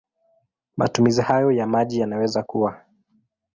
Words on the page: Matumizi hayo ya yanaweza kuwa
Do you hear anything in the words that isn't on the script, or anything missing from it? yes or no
yes